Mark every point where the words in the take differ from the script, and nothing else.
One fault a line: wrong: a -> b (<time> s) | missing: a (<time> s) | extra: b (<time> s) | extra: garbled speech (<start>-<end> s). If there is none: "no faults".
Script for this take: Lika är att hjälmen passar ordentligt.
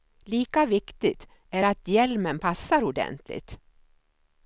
extra: viktigt (0.7 s)